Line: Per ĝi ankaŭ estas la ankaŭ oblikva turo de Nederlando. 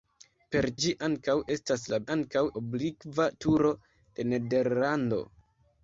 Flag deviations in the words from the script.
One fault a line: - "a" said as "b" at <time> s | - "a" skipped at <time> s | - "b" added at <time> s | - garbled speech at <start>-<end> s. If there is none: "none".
none